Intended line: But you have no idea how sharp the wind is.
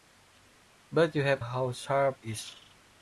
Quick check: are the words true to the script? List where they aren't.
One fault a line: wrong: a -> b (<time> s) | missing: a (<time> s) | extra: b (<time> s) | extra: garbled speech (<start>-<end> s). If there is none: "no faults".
missing: no idea (1.4 s)
missing: the wind (2.2 s)